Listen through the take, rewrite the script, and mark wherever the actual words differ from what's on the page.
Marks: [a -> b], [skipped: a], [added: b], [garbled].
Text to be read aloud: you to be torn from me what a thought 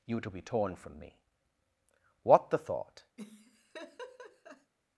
you to be torn from me what [a -> the] thought